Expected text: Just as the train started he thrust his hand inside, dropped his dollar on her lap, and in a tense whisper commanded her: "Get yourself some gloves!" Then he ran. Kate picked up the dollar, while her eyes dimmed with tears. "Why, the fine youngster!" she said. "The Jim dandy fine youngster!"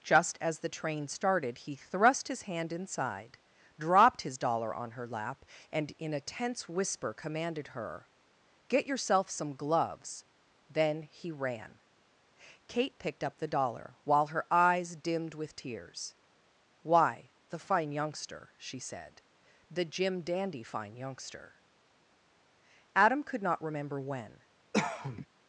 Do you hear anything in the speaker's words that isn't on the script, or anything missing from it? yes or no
yes